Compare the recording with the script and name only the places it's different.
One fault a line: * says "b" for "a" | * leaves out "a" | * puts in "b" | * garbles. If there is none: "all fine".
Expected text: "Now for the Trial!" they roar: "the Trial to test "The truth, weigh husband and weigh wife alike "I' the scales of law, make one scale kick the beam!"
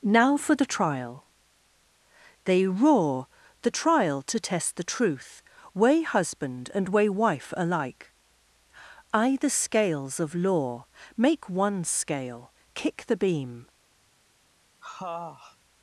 all fine